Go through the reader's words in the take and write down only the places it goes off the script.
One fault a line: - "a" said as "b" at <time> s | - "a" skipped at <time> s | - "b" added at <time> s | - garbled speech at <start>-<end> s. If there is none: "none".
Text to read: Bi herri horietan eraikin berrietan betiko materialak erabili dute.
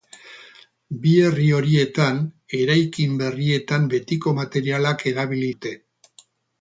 none